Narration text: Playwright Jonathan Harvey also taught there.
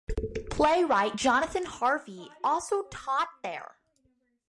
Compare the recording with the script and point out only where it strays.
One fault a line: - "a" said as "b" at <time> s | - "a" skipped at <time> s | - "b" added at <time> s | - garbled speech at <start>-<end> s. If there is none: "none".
none